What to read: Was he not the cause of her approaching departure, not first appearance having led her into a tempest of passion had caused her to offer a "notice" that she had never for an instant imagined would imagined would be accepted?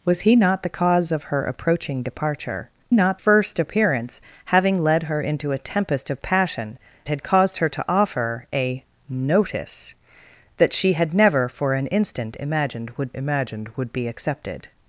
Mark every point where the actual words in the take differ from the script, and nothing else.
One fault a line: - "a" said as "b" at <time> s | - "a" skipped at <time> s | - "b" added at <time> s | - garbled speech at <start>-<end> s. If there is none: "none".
none